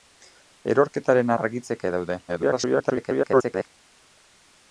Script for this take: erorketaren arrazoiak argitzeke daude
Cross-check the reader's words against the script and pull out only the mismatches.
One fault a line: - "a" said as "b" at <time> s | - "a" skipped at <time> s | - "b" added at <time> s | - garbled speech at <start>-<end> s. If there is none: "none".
- "arrazoiak" skipped at 1.3 s
- garbled speech at 2.3-3.7 s